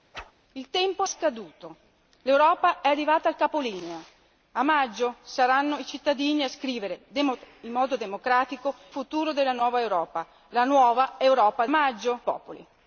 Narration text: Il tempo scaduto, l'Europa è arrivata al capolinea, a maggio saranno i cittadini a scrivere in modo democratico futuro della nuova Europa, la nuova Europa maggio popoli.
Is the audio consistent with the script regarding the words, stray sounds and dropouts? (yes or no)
no